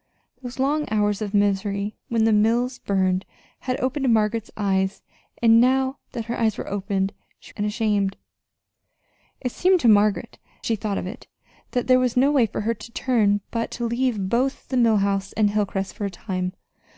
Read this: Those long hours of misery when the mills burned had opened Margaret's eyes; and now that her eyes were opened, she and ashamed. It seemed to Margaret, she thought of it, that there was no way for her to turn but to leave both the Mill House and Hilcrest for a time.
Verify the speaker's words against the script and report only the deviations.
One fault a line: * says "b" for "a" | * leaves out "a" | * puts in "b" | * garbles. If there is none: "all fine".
all fine